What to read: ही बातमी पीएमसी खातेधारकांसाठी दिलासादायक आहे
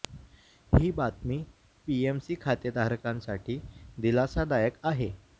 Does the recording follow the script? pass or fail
pass